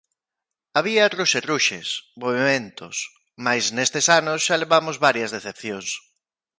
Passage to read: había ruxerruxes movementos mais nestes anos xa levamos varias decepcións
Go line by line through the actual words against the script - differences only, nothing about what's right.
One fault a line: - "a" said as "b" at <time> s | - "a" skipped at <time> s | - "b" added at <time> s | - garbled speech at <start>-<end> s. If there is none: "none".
none